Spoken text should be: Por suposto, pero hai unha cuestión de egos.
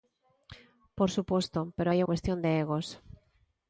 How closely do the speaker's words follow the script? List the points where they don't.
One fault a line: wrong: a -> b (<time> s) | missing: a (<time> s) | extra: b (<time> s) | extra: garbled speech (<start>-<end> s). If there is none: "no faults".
missing: unha (2.0 s)